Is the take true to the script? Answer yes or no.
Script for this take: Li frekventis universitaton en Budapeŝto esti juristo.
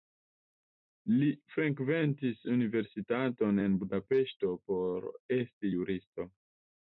no